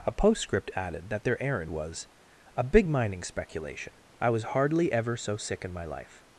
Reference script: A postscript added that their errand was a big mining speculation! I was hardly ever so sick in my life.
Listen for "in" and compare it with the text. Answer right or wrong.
right